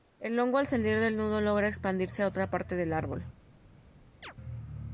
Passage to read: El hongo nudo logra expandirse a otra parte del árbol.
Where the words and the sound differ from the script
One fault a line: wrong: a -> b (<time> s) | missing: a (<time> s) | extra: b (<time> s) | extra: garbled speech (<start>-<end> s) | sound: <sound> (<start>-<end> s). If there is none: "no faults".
extra: al salir del (0.6 s)
sound: chirp (4.2-4.3 s)